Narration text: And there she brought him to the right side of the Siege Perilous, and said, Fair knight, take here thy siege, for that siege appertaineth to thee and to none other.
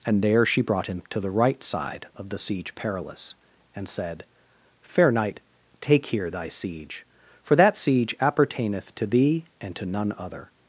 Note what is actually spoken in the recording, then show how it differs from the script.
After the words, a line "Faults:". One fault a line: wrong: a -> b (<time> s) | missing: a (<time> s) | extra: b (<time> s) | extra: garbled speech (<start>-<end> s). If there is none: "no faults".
And there she brought him to the right side of the Siege Perilous, and said, Fair knight, take here thy siege, for that siege appertaineth to thee and to none other.
Faults:
no faults